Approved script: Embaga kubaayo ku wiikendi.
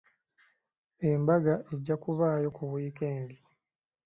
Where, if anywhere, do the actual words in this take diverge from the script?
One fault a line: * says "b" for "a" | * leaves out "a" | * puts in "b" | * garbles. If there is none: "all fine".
* puts in "ejja"